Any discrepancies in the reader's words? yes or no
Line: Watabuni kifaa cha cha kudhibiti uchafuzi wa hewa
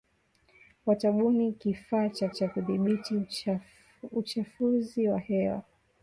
no